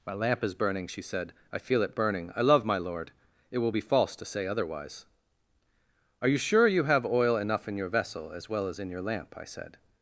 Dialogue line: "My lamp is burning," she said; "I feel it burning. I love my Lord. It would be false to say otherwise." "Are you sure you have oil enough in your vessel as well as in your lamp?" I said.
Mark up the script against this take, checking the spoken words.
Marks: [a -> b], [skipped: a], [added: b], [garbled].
"My lamp is burning," she said; "I feel it burning. I love my Lord. It [would -> will] be false to say otherwise." "Are you sure you have oil enough in your vessel as well as in your lamp?" I said.